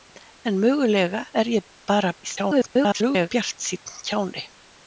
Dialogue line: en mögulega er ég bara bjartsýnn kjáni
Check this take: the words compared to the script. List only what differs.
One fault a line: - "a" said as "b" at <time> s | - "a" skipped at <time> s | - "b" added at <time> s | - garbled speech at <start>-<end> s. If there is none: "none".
- garbled speech at 2.2-3.3 s